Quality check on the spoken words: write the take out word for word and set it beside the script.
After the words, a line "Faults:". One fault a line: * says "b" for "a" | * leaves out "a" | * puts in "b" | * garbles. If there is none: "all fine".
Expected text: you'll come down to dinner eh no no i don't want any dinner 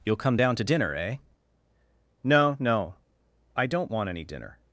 you'll come down to dinner eh no no i don't want any dinner
Faults:
all fine